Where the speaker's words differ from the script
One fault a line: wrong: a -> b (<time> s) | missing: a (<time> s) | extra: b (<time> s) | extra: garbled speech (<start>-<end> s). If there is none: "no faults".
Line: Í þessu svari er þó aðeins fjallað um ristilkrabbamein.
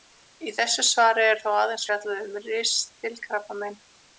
no faults